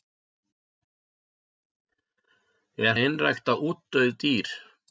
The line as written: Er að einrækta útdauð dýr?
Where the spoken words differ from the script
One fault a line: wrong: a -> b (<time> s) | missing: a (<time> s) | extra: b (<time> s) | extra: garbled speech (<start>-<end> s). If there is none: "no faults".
no faults